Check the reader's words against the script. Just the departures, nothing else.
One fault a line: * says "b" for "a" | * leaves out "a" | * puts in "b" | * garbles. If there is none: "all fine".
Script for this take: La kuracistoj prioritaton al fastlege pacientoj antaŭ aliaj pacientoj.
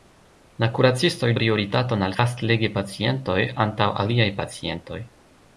all fine